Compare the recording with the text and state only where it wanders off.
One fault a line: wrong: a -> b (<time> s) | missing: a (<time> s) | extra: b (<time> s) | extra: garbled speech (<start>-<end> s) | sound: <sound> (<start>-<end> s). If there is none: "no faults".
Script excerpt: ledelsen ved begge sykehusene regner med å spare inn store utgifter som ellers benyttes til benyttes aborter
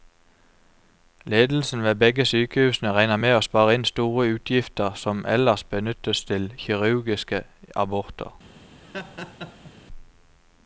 wrong: benyttes -> kirurgiske (6.6 s)
sound: laugh (8.8-9.7 s)